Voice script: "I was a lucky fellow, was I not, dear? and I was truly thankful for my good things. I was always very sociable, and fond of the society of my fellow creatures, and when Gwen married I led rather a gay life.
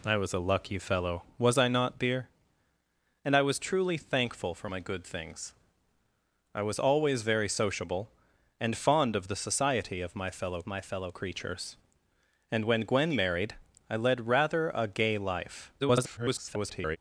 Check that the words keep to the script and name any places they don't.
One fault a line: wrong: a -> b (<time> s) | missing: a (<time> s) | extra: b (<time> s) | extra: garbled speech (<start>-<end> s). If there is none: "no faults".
extra: my fellow (10.7 s)
extra: garbled speech (15.8-17.0 s)